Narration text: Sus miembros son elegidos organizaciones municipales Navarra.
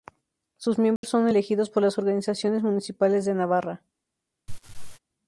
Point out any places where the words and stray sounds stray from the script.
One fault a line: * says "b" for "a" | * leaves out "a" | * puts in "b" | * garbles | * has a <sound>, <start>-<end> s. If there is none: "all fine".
* has a dropout, 1.0-1.0 s
* puts in "por las"
* puts in "de"
* has a laugh, 4.5-5.0 s